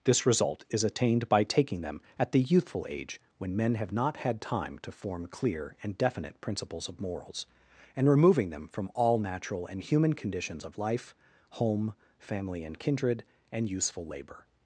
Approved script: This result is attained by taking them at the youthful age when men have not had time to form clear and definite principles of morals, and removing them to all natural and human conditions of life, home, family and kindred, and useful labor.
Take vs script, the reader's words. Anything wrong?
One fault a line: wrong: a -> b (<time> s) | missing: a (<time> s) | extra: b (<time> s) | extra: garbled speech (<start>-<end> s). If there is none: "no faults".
wrong: to -> from (8.7 s)